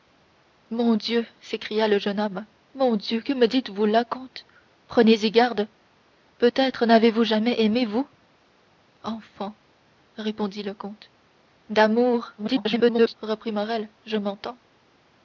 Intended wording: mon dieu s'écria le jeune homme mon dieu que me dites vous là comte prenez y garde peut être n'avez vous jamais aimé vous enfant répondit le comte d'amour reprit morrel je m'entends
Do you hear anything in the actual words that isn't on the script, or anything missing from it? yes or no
yes